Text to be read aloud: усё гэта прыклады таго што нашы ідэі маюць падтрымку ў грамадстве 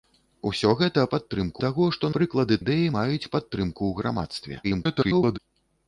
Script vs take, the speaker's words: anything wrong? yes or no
yes